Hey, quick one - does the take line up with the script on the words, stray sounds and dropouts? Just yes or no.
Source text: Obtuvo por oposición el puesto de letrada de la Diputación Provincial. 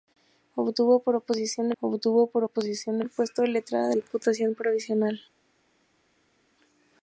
no